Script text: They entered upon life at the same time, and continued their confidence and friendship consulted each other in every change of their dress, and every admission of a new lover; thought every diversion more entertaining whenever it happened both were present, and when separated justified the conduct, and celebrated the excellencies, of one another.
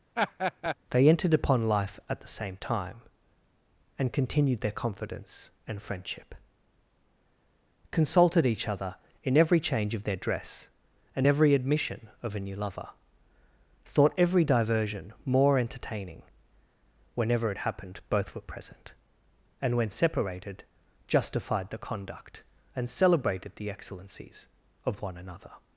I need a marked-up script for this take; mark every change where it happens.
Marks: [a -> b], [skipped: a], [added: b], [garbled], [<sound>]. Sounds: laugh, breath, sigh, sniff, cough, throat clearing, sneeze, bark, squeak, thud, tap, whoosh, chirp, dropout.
[laugh] They entered upon life at the same time, and continued their confidence and friendship consulted each other in every change of their dress, and every admission of a new lover; thought every diversion more entertaining whenever it happened both were present, and when separated justified the conduct, and celebrated the excellencies, of one another.